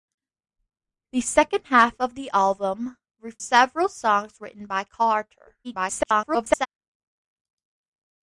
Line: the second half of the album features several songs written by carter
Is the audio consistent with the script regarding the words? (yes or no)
no